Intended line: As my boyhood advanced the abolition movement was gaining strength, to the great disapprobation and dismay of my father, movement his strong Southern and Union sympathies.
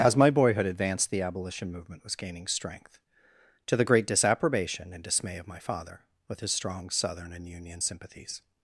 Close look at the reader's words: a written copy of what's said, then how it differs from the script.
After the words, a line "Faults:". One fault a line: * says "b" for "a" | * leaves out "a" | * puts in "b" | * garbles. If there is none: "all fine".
As my boyhood advanced the abolition movement was gaining strength, to the great disapprobation and dismay of my father, with his strong Southern and Union sympathies.
Faults:
* says "with" for "movement"